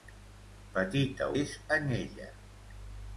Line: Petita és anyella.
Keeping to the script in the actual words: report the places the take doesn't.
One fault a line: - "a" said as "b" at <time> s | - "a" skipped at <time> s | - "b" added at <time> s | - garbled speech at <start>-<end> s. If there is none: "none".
none